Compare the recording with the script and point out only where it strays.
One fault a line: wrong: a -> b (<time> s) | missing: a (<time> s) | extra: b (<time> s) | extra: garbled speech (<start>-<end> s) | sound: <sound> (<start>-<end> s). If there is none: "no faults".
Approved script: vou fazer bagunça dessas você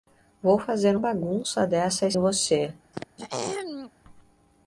sound: throat clearing (2.9-3.9 s)